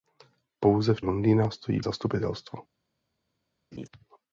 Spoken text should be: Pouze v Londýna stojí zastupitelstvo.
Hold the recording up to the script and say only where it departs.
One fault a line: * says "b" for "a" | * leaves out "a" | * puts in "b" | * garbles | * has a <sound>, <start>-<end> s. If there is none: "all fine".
* has a laugh, 3.7-3.9 s